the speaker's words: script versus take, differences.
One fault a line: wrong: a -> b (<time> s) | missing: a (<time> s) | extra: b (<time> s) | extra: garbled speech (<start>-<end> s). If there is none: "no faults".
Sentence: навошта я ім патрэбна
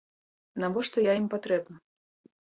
no faults